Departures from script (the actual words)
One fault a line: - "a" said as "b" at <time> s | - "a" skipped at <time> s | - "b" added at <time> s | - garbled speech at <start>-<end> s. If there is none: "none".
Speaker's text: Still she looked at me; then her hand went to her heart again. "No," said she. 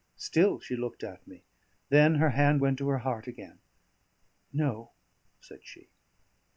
none